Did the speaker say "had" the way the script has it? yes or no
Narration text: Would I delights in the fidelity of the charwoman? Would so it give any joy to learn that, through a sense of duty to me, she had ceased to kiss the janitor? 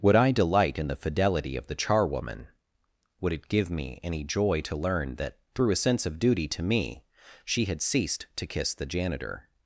yes